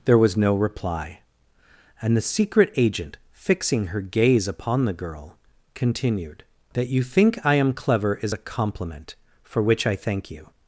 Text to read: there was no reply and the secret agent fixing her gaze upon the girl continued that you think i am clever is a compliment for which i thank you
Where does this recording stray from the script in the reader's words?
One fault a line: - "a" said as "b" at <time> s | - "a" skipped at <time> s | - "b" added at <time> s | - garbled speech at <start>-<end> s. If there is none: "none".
none